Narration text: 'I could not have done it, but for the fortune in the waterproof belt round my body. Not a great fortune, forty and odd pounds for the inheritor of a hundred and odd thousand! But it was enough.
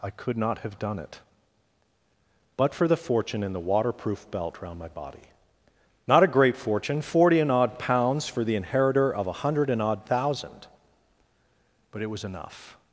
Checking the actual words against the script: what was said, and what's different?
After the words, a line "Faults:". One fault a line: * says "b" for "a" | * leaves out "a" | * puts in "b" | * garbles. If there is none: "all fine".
'I could not have done it, but for the fortune in the waterproof belt round my body. Not a great fortune, forty and odd pounds for the inheritor of a hundred and odd thousand! But it was enough.
Faults:
all fine